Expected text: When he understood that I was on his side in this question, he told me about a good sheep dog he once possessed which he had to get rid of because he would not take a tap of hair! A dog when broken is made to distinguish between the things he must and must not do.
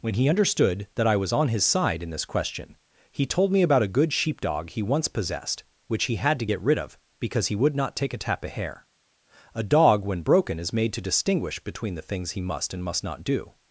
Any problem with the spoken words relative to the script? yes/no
no